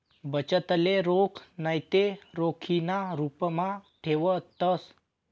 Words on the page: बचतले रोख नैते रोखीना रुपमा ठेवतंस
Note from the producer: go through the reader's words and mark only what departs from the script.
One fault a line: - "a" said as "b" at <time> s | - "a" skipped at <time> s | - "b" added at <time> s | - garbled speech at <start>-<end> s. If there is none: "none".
none